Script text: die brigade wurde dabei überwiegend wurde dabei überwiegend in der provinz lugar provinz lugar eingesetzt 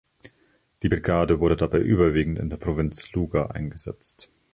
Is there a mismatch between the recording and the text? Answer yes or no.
yes